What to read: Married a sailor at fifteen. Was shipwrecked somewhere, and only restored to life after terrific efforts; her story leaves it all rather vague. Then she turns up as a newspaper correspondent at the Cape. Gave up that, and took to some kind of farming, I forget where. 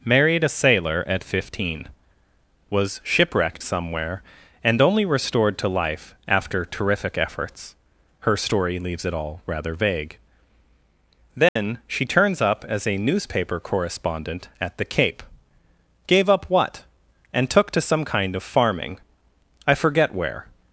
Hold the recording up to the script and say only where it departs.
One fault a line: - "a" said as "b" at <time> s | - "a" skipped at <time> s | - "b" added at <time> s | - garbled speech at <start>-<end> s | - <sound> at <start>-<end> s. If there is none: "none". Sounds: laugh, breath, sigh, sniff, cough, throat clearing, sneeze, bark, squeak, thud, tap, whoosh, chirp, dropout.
- dropout at 11.5-11.6 s
- "that" said as "what" at 16.5 s